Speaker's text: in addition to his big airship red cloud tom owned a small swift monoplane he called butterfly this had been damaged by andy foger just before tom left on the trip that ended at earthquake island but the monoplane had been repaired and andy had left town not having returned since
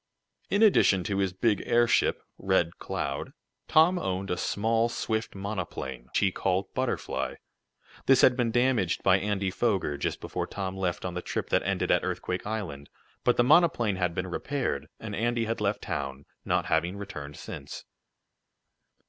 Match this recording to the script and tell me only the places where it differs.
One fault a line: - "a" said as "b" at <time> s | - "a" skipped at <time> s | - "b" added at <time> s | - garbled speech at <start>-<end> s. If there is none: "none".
none